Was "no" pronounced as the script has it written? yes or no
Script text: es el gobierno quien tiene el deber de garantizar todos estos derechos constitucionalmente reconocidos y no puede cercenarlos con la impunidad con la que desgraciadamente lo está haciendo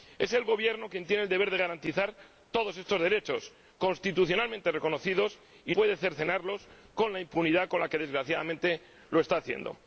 no